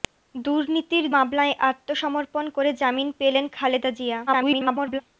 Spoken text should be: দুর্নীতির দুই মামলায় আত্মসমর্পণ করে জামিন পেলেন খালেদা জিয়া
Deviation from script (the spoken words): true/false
true